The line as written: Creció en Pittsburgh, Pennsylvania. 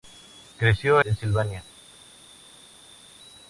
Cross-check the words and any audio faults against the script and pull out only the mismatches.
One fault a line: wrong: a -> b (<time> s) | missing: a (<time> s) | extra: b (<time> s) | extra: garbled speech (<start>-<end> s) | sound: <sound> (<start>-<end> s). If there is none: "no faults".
missing: en Pittsburgh (1.0 s)